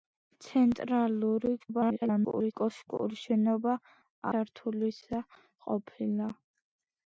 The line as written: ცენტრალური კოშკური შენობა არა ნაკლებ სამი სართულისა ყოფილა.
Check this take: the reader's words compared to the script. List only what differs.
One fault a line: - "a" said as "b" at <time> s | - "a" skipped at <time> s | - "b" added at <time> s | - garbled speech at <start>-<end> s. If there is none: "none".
- garbled speech at 1.6-2.5 s
- "არა ნაკლებ სამი" skipped at 3.8 s